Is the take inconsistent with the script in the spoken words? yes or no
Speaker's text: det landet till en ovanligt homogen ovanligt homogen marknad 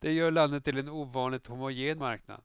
yes